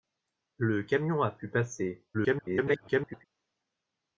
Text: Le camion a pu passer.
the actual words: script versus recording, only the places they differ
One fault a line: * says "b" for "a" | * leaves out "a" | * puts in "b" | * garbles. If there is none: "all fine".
* garbles